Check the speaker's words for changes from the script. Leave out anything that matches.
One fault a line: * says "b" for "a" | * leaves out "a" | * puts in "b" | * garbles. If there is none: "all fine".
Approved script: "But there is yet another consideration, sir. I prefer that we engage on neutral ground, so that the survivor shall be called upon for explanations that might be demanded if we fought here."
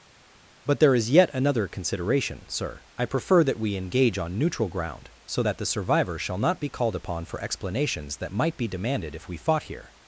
* puts in "not"